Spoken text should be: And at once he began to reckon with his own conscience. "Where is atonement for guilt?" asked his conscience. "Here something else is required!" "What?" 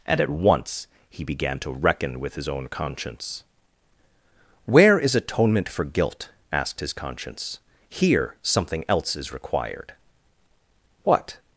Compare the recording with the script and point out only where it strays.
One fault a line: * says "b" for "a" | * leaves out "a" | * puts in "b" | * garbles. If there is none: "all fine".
all fine